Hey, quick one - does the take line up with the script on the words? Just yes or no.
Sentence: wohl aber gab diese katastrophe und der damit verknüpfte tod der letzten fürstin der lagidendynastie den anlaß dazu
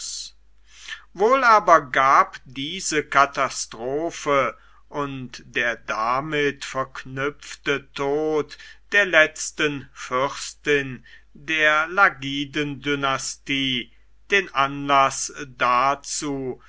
yes